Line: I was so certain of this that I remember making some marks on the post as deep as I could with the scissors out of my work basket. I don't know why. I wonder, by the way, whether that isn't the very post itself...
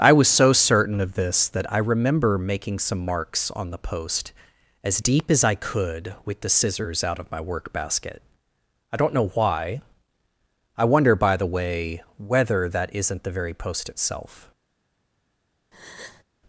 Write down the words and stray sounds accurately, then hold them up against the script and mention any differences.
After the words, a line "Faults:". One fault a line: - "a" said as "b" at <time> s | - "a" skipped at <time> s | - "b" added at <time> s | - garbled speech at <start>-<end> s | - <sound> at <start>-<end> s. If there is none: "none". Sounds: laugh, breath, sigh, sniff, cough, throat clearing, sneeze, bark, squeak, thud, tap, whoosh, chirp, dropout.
I was so certain of this that I remember making some marks on the post as deep as I could with the scissors out of my work basket. I don't know why. I wonder, by the way, whether that isn't the very post itself...
Faults:
- breath at 15.7-16.2 s